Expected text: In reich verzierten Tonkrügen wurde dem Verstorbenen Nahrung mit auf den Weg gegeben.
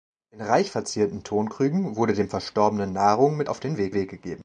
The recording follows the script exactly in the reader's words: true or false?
false